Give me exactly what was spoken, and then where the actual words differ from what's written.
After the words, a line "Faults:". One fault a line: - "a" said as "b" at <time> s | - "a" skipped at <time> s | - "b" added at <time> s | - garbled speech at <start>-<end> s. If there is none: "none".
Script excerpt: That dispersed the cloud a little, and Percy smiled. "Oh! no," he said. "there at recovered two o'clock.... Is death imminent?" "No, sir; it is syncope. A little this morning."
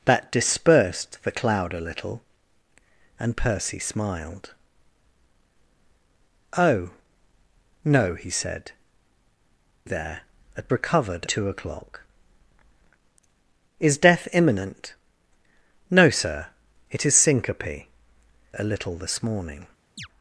That dispersed the cloud a little, and Percy smiled. "Oh! no," he said. "there at recovered two o'clock.... Is death imminent?" "No, sir; it is syncope. A little this morning."
Faults:
none